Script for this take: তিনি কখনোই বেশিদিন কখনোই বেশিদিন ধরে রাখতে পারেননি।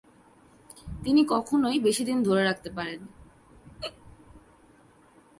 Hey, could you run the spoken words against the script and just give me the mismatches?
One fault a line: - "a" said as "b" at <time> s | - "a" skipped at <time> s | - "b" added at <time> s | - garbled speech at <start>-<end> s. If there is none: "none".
- "কখনোই বেশিদিন" skipped at 2.2 s